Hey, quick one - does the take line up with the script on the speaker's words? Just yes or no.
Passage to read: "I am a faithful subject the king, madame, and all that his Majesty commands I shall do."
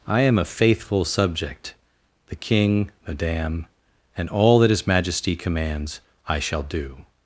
yes